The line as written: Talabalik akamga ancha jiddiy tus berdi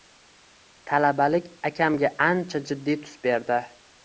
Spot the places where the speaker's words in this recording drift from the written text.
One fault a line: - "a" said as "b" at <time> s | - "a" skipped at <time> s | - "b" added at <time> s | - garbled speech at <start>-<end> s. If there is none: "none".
none